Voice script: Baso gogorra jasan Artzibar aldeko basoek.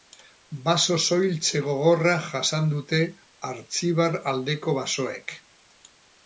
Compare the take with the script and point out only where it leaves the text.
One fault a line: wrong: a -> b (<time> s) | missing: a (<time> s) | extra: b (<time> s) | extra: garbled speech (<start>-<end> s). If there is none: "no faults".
extra: soiltze (1.1 s)
extra: dute (2.7 s)